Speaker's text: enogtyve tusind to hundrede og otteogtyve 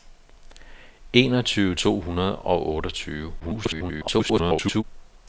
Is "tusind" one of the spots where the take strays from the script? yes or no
yes